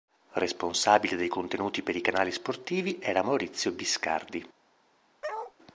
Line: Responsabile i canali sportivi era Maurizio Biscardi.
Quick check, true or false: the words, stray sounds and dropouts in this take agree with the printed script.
false